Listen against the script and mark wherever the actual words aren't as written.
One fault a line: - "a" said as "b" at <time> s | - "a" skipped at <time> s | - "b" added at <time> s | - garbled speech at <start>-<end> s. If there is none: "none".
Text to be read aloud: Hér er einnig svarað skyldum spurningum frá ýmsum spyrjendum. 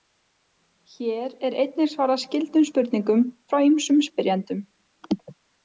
none